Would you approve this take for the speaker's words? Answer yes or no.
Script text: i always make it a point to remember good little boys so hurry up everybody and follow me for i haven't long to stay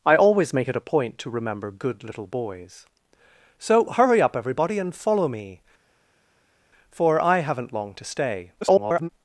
no